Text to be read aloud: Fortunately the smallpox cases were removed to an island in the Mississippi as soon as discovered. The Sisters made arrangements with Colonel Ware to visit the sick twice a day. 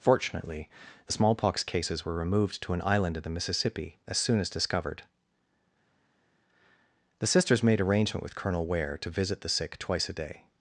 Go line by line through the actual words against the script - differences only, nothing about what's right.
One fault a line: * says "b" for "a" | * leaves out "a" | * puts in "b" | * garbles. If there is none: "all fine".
* says "arrangement" for "arrangements"